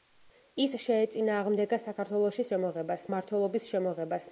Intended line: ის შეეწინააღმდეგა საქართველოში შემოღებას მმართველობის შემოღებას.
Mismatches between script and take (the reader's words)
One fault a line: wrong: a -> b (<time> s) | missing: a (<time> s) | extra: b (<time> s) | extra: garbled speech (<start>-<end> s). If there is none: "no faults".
no faults